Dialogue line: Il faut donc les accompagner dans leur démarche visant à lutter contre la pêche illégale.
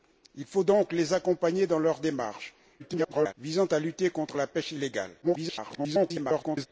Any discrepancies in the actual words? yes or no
yes